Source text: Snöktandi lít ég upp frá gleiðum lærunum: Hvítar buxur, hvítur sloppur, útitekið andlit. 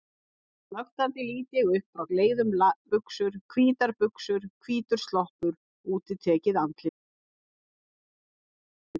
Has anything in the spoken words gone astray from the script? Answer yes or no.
yes